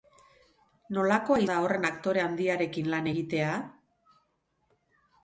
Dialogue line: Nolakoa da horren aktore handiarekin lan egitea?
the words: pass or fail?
pass